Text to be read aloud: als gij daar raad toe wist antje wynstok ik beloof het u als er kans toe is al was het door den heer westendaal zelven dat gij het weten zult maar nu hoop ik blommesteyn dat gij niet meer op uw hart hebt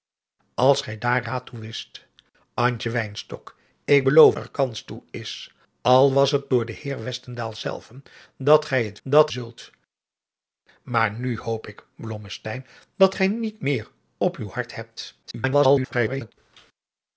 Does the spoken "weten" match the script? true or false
false